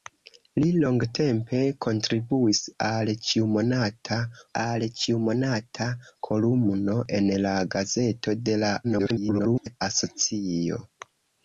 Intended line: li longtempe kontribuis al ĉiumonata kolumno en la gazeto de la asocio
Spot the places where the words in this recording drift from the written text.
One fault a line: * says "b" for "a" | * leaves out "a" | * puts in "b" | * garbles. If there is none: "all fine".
* puts in "al ĉiumonata"
* garbles